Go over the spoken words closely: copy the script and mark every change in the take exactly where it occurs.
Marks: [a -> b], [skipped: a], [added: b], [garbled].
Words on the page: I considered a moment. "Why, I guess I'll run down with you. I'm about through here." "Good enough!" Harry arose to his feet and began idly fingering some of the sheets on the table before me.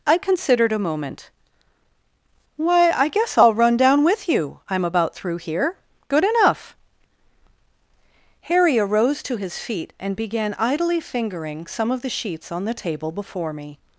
I considered a moment. "Why, I guess I'll run down with you. I'm about through here." "Good enough!" Harry arose to his feet and began idly fingering some of the sheets on the table before me.